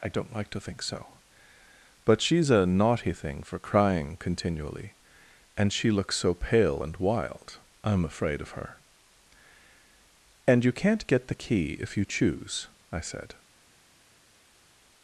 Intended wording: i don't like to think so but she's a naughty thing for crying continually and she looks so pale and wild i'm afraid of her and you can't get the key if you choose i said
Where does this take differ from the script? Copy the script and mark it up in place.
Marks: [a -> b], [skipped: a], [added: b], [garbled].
i don't like to think so but she's a naughty thing for crying continually and she looks so pale and wild i'm afraid of her and you can't get the key if you choose i said